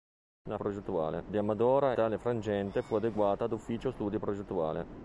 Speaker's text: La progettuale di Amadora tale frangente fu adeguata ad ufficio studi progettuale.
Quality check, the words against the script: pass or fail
pass